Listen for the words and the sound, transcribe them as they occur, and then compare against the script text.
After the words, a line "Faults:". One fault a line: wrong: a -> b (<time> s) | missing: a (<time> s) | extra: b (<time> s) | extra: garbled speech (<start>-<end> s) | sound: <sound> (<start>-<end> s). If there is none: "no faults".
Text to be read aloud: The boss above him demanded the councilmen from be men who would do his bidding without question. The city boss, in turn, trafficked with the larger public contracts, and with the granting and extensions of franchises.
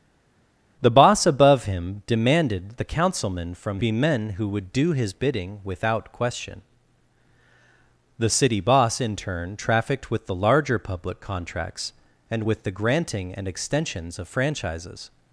The boss above him demanded the councilmen from be men who would do his bidding without question. The city boss, in turn, trafficked with the larger public contracts, and with the granting and extensions of franchises.
Faults:
no faults